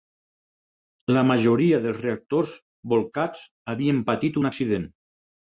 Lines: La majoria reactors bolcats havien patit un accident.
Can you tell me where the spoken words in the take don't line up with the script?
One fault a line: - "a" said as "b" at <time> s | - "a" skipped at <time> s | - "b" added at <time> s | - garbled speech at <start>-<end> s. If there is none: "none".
- "dels" added at 1.8 s